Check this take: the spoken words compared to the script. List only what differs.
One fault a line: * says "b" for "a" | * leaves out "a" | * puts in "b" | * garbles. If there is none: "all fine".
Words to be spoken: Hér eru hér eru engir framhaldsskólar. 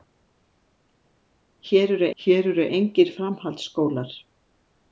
all fine